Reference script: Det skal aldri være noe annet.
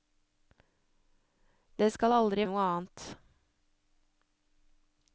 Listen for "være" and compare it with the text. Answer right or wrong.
wrong